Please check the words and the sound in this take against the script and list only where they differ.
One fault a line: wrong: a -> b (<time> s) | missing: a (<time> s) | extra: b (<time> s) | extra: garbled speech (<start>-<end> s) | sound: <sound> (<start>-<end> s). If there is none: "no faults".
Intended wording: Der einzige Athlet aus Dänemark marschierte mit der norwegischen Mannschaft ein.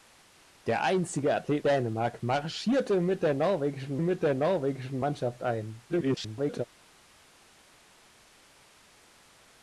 missing: aus (1.6 s)
extra: mit der norwegischen (4.0 s)
extra: garbled speech (5.9-6.6 s)